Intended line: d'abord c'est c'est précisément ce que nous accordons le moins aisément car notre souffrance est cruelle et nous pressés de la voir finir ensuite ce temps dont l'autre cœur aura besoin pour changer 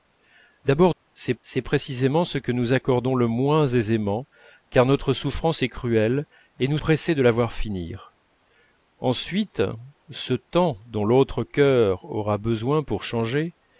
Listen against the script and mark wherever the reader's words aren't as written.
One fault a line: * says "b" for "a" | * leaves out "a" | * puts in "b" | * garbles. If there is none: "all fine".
all fine